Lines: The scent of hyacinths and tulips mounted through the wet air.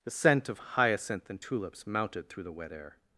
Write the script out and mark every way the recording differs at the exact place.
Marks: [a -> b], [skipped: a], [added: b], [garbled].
The scent of [hyacinths -> hyacinth] and tulips mounted through the wet air.